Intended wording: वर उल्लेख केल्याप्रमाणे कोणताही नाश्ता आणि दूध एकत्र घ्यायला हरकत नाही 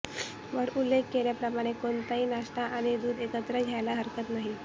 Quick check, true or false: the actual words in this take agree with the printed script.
true